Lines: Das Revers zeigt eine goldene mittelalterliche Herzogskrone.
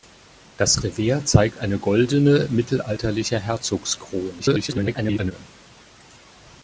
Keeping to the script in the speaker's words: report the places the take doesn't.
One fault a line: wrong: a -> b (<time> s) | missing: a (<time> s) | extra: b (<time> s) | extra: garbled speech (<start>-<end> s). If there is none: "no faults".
extra: garbled speech (4.4-5.3 s)